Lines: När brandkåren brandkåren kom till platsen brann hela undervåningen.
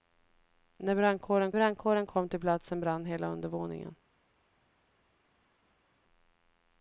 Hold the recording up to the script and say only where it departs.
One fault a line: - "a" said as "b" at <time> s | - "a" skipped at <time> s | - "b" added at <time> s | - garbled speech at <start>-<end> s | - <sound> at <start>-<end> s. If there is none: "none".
none